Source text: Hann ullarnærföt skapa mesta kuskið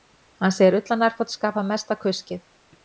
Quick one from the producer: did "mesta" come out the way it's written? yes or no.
yes